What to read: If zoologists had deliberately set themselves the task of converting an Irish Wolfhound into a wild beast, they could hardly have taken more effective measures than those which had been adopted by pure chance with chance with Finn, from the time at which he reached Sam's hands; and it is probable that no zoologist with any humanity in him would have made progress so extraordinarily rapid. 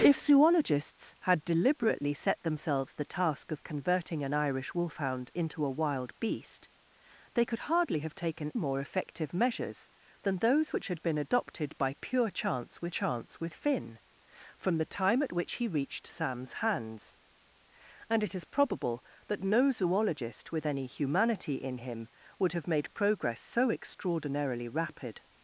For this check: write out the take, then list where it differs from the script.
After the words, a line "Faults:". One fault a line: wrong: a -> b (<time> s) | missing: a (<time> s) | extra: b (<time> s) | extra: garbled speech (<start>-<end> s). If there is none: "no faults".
If zoologists had deliberately set themselves the task of converting an Irish Wolfhound into a wild beast, they could hardly have taken more effective measures than those which had been adopted by pure chance with chance with Finn, from the time at which he reached Sam's hands; and it is probable that no zoologist with any humanity in him would have made progress so extraordinarily rapid.
Faults:
no faults